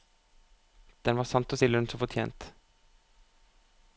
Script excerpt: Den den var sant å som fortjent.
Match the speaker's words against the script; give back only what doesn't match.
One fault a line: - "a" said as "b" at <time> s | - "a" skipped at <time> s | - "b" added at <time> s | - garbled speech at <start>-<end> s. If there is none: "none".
- "den" skipped at 1.2 s
- "si lønn" added at 1.6 s